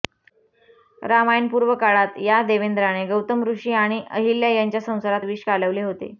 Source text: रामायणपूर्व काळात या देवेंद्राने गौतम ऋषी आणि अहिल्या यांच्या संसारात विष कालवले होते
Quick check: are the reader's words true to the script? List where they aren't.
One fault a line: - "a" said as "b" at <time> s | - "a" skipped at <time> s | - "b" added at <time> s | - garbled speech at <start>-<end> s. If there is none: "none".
none